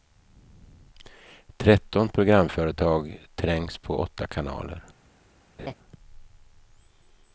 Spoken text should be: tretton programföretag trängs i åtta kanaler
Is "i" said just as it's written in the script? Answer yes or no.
no